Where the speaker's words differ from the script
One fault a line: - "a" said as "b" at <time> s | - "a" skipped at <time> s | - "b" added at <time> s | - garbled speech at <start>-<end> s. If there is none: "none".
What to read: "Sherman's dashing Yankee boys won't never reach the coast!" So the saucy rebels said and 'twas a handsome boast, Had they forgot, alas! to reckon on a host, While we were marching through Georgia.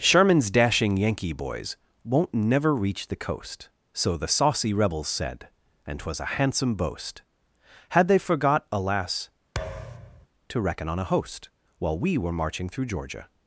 none